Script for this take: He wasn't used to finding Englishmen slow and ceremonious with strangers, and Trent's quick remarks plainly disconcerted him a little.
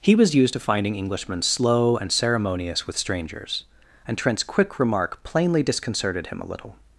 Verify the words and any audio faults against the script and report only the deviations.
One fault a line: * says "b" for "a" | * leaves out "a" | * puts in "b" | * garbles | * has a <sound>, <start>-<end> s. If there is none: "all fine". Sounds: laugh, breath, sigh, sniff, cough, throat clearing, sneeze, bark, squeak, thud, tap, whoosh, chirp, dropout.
* says "was" for "wasn't"
* says "remark" for "remarks"